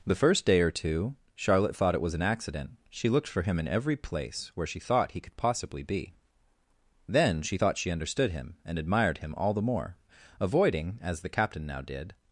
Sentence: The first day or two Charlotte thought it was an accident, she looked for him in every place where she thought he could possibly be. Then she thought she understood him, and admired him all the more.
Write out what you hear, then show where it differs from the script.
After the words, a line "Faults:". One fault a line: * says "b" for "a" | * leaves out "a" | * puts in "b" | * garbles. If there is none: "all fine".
The first day or two Charlotte thought it was an accident, she looked for him in every place where she thought he could possibly be. Then she thought she understood him, and admired him all the more. Avoiding, as the Captain now did
Faults:
* puts in "Avoiding as the Captain now did"